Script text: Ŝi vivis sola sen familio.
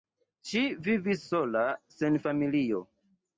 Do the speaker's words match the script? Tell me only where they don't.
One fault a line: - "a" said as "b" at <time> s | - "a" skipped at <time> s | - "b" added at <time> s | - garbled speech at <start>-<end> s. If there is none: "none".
none